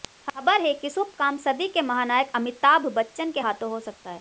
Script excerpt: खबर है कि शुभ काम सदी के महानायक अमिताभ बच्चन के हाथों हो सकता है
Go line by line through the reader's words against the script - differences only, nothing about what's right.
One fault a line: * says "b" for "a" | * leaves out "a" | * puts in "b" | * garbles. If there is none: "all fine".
all fine